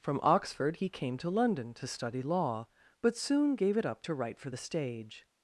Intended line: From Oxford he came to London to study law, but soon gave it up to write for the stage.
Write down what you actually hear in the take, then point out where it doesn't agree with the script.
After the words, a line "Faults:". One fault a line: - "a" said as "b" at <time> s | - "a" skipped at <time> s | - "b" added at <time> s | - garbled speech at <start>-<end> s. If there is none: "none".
From Oxford he came to London to study law, but soon gave it up to write for the stage.
Faults:
none